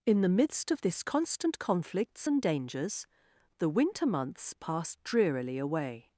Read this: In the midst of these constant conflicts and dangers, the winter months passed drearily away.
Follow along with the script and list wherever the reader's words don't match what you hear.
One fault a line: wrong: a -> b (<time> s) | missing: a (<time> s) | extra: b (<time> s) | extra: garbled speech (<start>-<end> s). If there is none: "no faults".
wrong: these -> this (0.8 s)